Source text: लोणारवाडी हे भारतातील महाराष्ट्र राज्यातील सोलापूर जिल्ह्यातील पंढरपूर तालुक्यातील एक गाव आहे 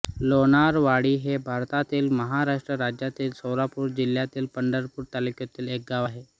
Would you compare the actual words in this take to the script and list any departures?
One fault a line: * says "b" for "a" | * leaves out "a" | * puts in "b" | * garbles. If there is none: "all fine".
all fine